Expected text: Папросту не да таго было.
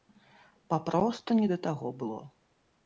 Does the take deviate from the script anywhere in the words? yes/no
no